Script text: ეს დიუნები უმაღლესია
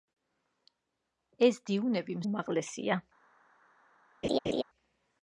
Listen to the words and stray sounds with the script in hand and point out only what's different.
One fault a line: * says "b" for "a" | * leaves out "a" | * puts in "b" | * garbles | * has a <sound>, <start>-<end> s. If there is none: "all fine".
* has a laugh, 4.2-4.6 s